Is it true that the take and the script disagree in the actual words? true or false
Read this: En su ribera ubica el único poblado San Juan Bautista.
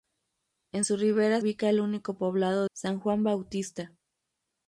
false